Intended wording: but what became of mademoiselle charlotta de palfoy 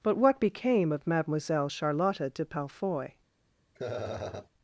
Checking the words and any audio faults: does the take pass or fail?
fail